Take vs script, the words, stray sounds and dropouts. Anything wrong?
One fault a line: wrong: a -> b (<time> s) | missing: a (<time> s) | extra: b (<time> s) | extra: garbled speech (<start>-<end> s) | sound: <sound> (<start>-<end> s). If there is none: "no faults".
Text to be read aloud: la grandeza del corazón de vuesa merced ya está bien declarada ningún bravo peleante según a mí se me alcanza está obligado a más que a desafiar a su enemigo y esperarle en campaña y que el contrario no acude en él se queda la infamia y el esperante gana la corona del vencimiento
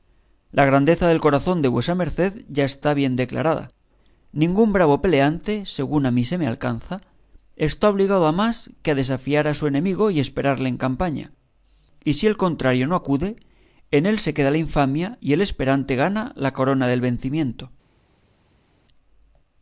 wrong: que -> si (12.1 s)